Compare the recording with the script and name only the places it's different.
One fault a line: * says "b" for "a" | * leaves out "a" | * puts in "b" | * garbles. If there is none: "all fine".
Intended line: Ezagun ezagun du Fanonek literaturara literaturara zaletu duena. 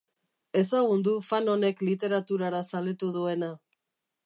* leaves out "ezagun"
* leaves out "literaturara"